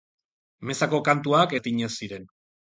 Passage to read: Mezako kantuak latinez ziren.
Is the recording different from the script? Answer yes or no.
no